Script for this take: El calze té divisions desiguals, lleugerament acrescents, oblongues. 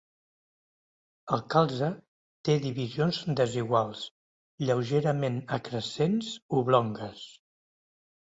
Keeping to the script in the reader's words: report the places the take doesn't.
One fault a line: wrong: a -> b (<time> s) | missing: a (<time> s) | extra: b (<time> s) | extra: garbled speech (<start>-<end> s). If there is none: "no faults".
no faults